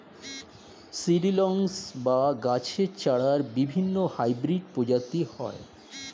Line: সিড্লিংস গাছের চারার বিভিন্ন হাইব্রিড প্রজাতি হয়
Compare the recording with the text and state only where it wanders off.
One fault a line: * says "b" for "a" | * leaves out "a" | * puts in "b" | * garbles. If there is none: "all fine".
* puts in "বা"